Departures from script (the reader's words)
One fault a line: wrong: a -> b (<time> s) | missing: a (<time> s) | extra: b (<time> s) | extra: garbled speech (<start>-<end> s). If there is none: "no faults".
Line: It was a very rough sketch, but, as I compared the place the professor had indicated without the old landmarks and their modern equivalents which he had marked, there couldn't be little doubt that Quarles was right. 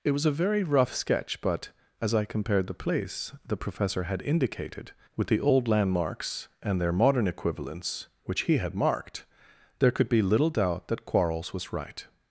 wrong: without -> with (5.2 s)
wrong: couldn't -> could (9.9 s)